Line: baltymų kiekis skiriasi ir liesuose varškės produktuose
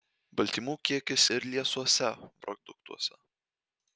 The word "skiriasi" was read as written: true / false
false